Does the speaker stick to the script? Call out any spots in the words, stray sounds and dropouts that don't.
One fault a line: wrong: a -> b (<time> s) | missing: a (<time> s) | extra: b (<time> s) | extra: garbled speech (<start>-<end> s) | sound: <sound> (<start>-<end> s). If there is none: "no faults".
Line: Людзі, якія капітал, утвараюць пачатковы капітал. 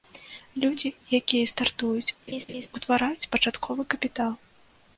wrong: капітал -> стартуюць (1.5 s)
sound: laugh (2.3-2.7 s)